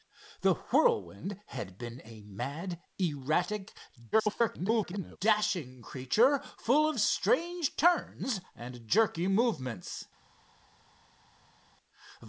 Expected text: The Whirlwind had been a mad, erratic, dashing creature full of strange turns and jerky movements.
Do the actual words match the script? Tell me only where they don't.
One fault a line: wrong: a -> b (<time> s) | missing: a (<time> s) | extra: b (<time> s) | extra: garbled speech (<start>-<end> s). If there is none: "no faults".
extra: garbled speech (4.1-5.2 s)